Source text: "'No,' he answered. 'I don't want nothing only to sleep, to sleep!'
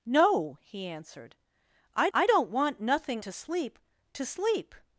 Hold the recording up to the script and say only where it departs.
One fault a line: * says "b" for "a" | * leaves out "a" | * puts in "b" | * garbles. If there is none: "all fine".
* puts in "I"
* leaves out "only"